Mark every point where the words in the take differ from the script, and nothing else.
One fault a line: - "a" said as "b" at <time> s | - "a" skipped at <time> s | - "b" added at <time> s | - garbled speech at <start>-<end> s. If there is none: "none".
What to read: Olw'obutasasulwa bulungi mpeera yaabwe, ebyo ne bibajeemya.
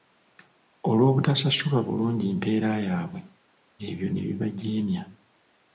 none